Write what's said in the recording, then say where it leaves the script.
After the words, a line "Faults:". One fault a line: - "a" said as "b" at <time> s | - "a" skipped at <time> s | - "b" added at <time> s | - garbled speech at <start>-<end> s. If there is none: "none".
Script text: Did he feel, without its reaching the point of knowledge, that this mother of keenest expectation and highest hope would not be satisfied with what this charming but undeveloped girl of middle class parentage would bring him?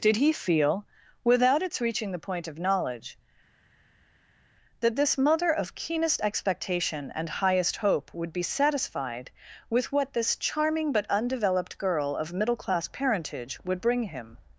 Did he feel, without its reaching the point of knowledge, that this mother of keenest expectation and highest hope would be satisfied with what this charming but undeveloped girl of middle class parentage would bring him?
Faults:
- "not" skipped at 8.3 s